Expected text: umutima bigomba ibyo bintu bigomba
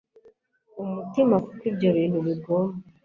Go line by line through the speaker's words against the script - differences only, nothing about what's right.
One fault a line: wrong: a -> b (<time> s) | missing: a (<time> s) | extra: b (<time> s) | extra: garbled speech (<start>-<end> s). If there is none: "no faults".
wrong: bigomba -> kuko (1.4 s)